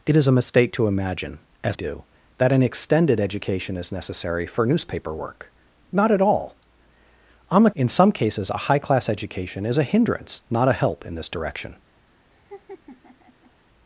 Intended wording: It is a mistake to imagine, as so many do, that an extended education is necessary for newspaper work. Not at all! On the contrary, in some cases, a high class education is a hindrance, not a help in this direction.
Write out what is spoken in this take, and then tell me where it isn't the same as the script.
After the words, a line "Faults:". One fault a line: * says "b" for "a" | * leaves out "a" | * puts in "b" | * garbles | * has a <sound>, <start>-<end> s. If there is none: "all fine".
It is a mistake to imagine, as do, that an extended education is necessary for newspaper work. Not at all! On the in some cases, a high class education is a hindrance, not a help in this direction.
Faults:
* leaves out "so many"
* leaves out "contrary"
* has a laugh, 12.3-13.5 s